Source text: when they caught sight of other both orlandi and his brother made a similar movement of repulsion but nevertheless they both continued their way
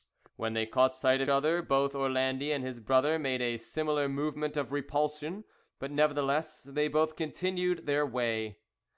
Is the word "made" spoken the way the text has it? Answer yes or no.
yes